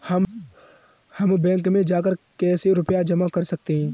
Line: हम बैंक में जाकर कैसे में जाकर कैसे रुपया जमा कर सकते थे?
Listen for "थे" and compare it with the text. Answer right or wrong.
wrong